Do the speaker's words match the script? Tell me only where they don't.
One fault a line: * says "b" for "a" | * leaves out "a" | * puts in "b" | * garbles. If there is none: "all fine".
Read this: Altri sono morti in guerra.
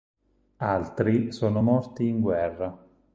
all fine